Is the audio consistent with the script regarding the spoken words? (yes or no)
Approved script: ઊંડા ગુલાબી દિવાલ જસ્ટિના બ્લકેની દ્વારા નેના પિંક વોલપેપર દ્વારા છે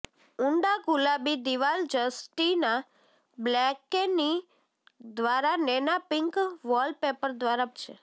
yes